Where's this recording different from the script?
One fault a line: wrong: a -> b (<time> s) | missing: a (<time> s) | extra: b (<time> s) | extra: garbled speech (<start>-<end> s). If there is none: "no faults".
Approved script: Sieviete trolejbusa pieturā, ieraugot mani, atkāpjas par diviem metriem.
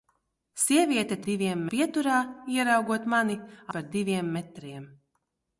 wrong: trolejbusa -> diviem (1.3 s)
missing: atkāpjas (3.4 s)